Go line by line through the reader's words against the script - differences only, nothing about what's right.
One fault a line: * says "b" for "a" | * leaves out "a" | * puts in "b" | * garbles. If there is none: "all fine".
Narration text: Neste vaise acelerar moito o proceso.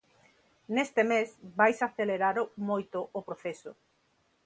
* puts in "mes"